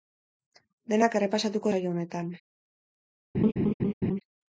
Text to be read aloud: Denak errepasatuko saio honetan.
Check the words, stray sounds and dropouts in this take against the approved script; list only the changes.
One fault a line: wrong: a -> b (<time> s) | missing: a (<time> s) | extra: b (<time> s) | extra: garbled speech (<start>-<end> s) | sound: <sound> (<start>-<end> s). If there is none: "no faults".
sound: laugh (3.3-4.2 s)